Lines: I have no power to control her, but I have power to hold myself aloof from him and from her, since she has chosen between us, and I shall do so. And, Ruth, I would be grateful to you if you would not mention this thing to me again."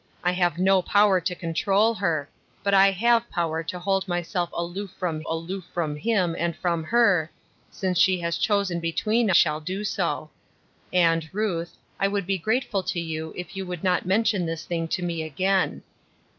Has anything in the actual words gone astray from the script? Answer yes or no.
yes